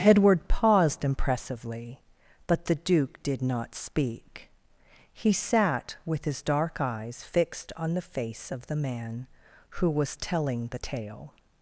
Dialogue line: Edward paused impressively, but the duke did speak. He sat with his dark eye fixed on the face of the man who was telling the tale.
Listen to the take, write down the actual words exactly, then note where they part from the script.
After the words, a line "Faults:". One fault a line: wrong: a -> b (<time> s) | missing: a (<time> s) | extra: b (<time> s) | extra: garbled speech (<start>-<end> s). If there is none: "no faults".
Edward paused impressively, but the duke did not speak. He sat with his dark eyes fixed on the face of the man who was telling the tale.
Faults:
extra: not (3.4 s)
wrong: eye -> eyes (6.8 s)